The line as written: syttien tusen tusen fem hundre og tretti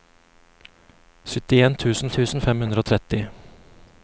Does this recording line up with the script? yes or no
yes